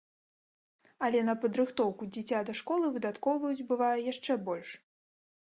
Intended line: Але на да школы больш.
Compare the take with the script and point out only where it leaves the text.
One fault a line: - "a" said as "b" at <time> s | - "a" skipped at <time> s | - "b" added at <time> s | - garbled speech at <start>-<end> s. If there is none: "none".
- "падрыхтоўку дзіця" added at 1.4 s
- "выдаткоўваюць бывае яшчэ" added at 3.0 s